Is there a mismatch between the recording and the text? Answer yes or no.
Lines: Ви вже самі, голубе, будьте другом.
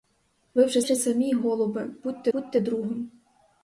yes